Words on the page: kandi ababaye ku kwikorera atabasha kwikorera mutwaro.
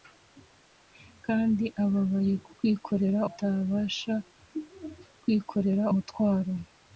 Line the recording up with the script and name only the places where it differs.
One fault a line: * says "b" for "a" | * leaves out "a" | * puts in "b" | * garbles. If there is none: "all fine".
all fine